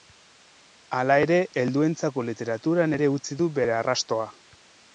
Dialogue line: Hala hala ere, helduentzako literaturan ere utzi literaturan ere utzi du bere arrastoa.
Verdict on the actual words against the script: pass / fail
fail